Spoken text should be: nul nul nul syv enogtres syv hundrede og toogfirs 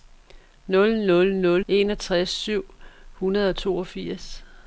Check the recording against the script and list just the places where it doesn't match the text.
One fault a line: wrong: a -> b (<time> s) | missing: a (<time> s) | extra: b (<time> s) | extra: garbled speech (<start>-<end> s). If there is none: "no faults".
missing: syv (1.6 s)